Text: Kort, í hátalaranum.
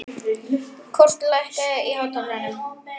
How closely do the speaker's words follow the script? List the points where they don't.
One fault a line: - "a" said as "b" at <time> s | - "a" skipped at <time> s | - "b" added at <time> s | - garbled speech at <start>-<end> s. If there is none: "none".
- "lækkaðu" added at 1.3 s